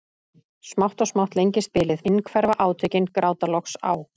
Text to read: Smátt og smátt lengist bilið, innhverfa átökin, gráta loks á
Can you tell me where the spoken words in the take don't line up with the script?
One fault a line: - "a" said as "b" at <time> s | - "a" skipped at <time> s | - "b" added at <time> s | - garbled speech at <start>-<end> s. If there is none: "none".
none